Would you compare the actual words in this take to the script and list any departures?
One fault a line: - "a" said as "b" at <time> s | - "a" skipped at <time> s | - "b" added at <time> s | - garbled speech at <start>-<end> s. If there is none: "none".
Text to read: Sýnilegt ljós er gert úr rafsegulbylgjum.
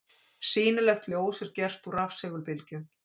none